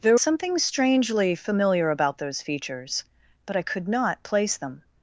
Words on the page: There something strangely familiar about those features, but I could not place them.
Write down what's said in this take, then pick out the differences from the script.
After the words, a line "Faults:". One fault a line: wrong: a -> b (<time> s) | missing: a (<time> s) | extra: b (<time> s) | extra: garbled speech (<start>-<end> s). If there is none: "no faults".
There something strangely familiar about those features, but I could not place them.
Faults:
no faults